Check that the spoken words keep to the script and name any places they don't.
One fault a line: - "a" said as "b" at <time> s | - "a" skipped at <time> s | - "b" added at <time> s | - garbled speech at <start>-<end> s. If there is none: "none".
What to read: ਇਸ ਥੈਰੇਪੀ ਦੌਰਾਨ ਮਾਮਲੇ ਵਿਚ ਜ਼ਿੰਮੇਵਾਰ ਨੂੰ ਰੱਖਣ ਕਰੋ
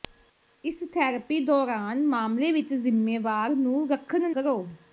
none